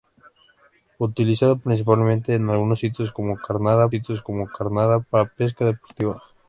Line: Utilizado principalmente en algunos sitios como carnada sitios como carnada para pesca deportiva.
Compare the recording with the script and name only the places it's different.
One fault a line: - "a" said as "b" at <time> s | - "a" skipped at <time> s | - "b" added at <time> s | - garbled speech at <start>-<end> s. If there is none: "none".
none